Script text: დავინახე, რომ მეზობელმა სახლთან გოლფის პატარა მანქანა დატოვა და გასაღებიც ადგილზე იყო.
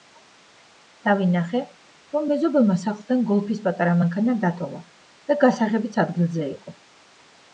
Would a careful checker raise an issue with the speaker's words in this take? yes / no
no